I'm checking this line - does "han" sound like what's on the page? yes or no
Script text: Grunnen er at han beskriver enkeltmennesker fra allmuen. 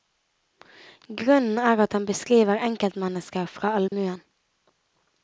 yes